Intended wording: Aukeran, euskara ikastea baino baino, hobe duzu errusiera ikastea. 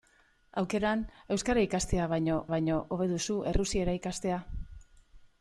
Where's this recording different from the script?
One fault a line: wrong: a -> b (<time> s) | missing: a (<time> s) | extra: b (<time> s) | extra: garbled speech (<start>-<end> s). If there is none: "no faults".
no faults